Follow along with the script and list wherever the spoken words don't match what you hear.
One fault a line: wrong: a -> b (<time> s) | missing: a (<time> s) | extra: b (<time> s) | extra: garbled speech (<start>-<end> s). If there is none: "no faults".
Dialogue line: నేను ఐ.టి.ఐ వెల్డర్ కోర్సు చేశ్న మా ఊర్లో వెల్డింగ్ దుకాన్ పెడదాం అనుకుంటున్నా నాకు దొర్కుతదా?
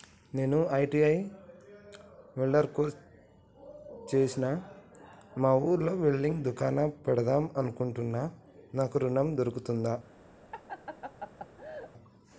extra: ఋణం (9.0 s)